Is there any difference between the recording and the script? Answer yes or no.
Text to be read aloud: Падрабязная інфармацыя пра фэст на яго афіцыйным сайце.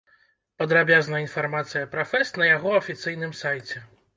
no